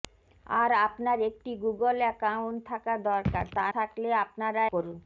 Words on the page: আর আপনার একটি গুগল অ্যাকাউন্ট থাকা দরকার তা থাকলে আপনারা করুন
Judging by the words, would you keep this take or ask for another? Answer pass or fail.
pass